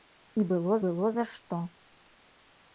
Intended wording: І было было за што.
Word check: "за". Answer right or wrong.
right